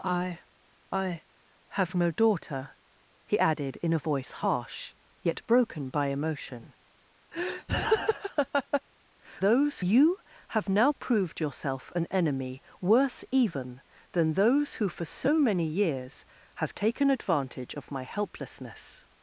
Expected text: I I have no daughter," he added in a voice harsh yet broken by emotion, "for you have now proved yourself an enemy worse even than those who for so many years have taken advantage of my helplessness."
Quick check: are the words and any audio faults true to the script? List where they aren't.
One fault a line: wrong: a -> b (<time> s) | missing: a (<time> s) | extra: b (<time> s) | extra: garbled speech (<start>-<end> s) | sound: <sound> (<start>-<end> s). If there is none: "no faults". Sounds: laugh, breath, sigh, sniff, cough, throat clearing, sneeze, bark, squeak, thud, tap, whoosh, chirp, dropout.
sound: laugh (7.3-8.8 s)
wrong: for -> those (9.4 s)